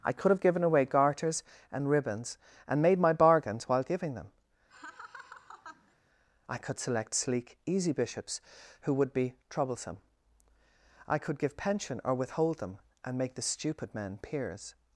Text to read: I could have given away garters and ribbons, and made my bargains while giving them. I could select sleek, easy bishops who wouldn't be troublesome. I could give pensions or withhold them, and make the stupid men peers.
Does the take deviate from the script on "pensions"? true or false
true